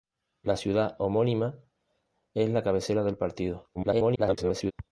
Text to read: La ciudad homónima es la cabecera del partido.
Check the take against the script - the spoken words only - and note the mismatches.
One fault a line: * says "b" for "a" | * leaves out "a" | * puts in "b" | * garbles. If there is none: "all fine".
* garbles